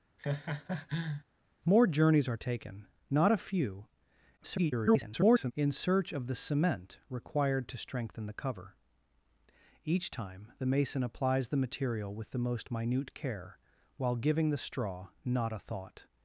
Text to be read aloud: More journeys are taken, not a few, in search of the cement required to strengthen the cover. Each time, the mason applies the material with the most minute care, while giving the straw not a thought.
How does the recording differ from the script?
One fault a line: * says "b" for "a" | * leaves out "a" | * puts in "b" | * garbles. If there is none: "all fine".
* garbles